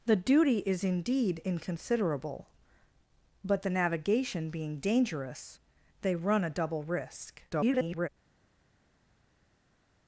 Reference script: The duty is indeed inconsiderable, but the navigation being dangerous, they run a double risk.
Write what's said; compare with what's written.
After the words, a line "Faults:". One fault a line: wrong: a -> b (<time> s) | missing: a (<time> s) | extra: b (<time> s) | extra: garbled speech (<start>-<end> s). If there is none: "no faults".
The duty is indeed inconsiderable, but the navigation being dangerous, they run a double risk. [garbled]
Faults:
extra: garbled speech (7.5-8.1 s)